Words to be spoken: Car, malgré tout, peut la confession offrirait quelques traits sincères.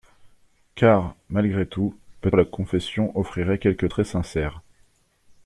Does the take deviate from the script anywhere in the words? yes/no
no